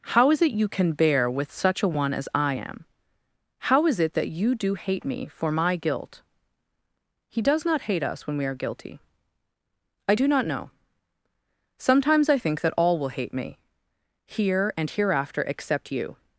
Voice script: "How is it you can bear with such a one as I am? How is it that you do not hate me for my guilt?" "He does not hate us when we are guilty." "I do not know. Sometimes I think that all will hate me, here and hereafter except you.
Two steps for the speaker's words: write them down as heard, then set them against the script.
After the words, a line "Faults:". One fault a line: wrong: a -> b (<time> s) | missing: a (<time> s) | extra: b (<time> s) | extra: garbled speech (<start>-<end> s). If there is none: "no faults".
"How is it you can bear with such a one as I am? How is it that you do hate me for my guilt?" "He does not hate us when we are guilty." "I do not know. Sometimes I think that all will hate me, here and hereafter except you.
Faults:
missing: not (4.7 s)